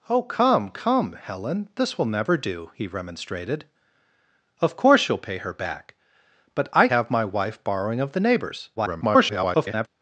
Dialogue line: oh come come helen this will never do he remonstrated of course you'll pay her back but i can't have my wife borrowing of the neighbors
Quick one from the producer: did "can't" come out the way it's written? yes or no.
no